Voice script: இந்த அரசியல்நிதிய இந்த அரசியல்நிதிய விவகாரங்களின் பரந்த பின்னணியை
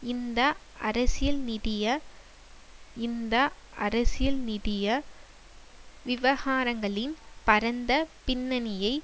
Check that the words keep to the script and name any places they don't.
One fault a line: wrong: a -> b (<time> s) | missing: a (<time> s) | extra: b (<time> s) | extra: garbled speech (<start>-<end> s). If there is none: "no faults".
no faults